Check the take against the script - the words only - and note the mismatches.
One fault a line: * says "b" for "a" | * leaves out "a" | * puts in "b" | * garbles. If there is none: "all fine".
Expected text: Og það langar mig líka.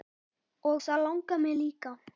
all fine